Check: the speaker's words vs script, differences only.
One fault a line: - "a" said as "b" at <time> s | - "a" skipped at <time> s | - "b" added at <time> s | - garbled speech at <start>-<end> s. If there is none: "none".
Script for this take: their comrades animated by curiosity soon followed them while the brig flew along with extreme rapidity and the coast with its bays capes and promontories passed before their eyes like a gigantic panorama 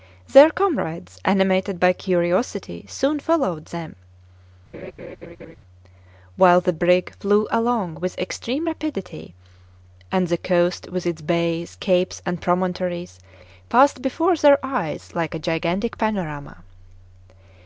none